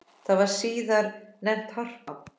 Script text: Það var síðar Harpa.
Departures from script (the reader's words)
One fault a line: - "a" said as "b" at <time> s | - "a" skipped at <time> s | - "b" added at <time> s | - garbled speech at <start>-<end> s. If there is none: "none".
- "nefnt" added at 1.5 s